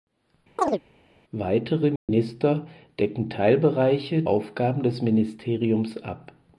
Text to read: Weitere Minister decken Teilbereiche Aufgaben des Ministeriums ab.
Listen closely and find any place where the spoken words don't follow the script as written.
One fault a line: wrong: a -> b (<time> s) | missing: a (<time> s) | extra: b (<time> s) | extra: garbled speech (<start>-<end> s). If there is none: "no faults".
no faults